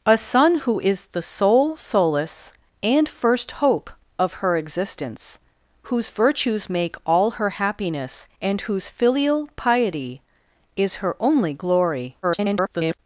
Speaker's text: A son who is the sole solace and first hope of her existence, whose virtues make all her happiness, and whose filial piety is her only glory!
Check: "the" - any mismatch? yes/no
no